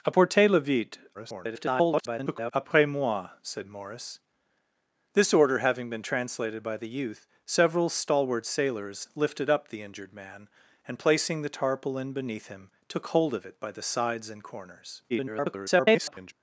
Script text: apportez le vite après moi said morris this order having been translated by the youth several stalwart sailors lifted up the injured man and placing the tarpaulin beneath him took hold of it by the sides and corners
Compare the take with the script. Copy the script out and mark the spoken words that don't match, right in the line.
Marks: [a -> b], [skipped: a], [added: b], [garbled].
apportez le vite [garbled] après moi said morris this order having been translated by the youth several stalwart sailors lifted up the injured man and placing the tarpaulin beneath him took hold of it by the sides and corners [garbled]